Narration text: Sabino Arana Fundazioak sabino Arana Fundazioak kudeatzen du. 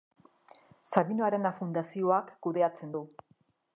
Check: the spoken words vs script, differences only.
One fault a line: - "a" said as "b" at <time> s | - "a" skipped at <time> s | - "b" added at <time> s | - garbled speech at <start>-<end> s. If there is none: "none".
- "sabino Arana Fundazioak" skipped at 2.3 s